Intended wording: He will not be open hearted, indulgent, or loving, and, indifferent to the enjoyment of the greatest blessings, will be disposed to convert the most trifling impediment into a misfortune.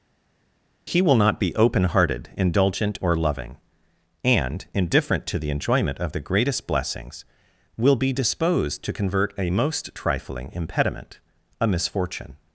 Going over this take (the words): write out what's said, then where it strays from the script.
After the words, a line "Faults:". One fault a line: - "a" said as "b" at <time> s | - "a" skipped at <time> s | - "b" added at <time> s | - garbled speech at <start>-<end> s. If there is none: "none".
He will not be open hearted, indulgent, or loving, and, indifferent to the enjoyment of the greatest blessings, will be disposed to convert a most trifling impediment a misfortune.
Faults:
- "the" said as "a" at 9.4 s
- "into" skipped at 11.2 s